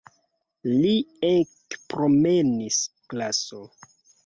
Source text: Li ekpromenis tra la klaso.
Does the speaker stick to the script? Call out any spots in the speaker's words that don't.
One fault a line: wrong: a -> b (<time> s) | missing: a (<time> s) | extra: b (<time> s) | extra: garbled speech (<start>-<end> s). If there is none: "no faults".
missing: tra la (2.8 s)